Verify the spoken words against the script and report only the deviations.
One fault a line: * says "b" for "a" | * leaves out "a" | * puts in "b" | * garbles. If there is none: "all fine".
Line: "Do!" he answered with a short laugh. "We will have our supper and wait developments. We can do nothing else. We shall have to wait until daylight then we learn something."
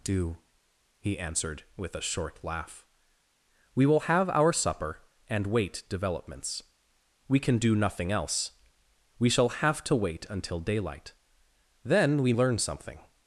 all fine